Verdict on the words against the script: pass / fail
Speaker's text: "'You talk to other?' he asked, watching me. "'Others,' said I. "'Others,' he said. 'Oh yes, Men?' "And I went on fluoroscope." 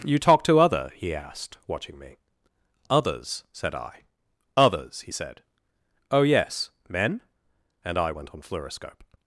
pass